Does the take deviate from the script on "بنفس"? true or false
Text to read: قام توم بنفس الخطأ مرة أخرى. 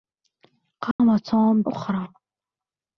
true